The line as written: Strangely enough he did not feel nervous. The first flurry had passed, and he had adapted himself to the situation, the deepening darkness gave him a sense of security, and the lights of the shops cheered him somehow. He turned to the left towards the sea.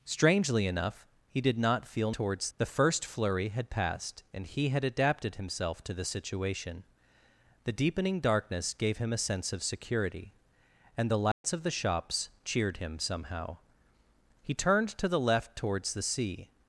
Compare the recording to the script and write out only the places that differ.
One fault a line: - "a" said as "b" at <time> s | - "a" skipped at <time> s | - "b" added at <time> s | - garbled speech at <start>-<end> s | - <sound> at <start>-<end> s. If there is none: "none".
- "nervous" said as "towards" at 2.1 s
- dropout at 11.3-11.4 s